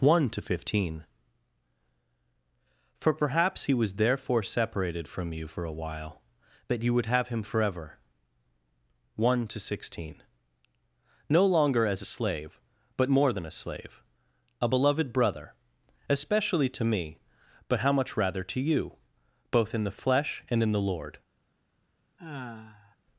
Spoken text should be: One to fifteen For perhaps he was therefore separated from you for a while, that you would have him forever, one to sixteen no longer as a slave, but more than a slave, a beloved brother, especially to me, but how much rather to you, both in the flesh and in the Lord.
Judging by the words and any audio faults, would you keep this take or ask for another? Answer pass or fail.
fail